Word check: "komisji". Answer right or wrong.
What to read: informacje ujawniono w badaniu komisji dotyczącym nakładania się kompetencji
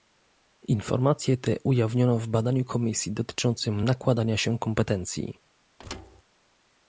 right